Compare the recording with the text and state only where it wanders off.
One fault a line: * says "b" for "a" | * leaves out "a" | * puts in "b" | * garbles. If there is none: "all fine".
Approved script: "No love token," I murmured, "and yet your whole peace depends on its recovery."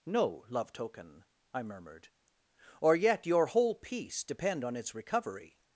* says "or" for "and"
* says "depend" for "depends"